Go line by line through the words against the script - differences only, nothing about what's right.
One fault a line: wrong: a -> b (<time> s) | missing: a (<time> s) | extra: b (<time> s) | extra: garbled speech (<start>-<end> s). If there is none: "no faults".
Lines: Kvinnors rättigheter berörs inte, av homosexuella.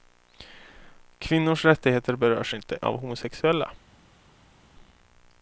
no faults